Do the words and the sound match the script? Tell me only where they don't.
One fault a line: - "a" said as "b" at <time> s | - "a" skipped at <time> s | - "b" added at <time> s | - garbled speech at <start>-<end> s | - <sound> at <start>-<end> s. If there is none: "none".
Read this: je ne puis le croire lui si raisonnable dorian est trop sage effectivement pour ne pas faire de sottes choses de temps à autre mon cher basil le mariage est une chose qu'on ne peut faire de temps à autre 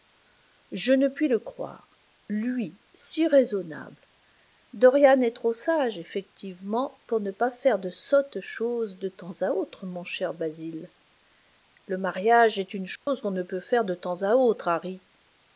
- dropout at 13.0-13.1 s